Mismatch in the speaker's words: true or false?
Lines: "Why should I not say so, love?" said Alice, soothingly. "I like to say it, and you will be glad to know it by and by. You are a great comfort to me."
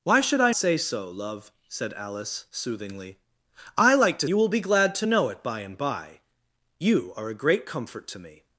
true